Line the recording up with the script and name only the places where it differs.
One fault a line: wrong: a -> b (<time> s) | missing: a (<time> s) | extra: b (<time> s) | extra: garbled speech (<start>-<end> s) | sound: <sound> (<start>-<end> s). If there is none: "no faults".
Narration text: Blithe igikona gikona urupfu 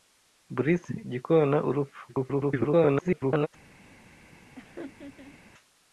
missing: igikona (0.9 s)
extra: garbled speech (2.1-3.5 s)
sound: laugh (4.6-5.4 s)